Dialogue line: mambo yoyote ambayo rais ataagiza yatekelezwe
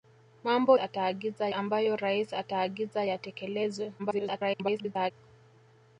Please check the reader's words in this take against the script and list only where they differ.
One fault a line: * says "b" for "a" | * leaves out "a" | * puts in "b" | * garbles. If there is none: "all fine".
* says "ataagiza" for "yoyote"
* garbles